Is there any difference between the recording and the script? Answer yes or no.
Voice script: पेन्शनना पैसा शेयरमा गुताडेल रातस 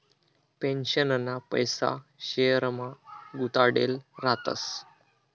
no